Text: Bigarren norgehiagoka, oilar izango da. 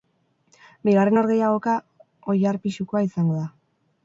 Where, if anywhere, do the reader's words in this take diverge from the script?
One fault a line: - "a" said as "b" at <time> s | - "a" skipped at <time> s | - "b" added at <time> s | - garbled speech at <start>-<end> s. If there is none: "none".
- "pisukoa" added at 2.7 s